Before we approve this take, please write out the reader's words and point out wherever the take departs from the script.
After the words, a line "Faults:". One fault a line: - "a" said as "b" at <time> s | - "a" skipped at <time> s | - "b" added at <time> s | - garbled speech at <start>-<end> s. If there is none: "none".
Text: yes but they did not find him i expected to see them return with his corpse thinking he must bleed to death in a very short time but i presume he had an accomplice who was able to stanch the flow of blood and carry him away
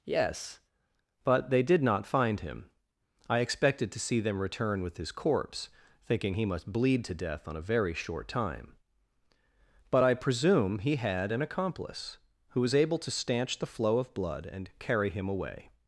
yes but they did not find him i expected to see them return with his corpse thinking he must bleed to death on a very short time but i presume he had an accomplice who was able to stanch the flow of blood and carry him away
Faults:
- "in" said as "on" at 7.5 s